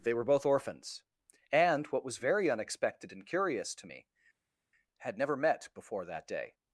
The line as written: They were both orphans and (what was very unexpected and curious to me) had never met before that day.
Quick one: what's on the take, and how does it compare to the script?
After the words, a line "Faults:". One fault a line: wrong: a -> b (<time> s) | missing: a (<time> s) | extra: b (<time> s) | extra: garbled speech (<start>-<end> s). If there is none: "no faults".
They were both orphans and (what was very unexpected and curious to me) had never met before that day.
Faults:
no faults